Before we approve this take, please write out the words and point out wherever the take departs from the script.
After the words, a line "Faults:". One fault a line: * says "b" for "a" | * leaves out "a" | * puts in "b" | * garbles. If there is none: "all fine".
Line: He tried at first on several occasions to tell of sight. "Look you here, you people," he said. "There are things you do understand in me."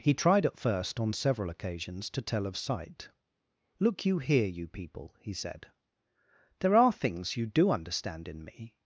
He tried at first on several occasions to tell of sight. "Look you here, you people," he said. "There are things you do understand in me."
Faults:
all fine